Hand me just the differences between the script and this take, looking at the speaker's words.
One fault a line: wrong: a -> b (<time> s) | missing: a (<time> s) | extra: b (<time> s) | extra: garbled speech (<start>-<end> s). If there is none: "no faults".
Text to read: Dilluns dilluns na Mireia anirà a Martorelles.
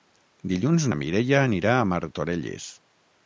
missing: dilluns (0.9 s)